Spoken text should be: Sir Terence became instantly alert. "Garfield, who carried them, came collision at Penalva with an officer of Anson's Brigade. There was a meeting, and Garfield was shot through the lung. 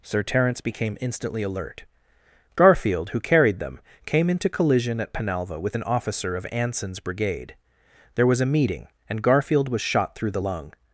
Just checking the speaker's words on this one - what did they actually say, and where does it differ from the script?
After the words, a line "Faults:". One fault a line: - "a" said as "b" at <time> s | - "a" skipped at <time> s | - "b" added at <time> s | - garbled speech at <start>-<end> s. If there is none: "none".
Sir Terence became instantly alert. "Garfield, who carried them, came into collision at Penalva with an officer of Anson's Brigade. There was a meeting, and Garfield was shot through the lung.
Faults:
- "into" added at 4.3 s